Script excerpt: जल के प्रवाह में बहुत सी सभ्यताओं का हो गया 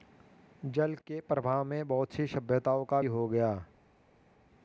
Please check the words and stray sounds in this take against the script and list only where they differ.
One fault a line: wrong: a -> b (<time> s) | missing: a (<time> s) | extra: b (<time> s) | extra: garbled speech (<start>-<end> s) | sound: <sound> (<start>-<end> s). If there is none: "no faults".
no faults